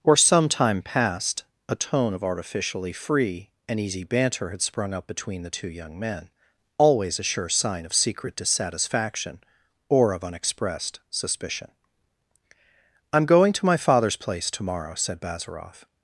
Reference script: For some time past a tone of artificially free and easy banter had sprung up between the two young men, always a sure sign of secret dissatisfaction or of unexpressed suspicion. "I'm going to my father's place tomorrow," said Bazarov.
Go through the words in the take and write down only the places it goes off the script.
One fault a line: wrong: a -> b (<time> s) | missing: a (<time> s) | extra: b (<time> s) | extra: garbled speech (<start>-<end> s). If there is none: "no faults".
no faults